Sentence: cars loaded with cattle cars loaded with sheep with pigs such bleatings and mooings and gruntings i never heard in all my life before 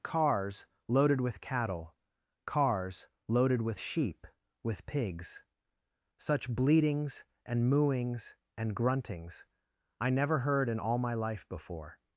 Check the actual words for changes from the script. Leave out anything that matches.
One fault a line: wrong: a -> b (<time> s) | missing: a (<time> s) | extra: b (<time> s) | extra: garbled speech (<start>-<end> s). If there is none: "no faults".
no faults